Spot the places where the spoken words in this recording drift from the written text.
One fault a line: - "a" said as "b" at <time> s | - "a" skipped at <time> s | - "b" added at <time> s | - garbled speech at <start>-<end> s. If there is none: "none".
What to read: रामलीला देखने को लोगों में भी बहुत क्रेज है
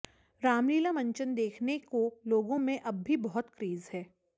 - "मंचन" added at 0.9 s
- "अब" added at 2.8 s